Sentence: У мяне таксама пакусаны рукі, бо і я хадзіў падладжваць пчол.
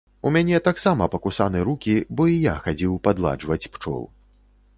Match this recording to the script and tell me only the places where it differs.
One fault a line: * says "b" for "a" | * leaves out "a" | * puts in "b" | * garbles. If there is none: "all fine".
all fine